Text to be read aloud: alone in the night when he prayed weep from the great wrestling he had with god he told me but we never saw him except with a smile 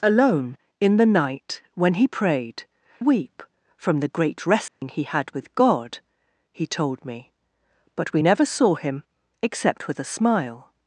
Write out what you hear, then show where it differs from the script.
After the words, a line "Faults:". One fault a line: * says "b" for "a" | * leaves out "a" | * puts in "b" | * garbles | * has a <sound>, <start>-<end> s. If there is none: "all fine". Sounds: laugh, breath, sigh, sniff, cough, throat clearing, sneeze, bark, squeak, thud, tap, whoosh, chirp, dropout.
alone in the night when he prayed weep from the great wrestling he had with god he told me but we never saw him except with a smile
Faults:
* has a dropout, 4.7-4.8 s